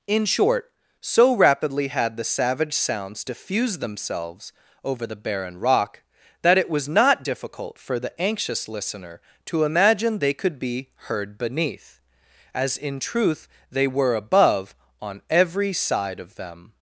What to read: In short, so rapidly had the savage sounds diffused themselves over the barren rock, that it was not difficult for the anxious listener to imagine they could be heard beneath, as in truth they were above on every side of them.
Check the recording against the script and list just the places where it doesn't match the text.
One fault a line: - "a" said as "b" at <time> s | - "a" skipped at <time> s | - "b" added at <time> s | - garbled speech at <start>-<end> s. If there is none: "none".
none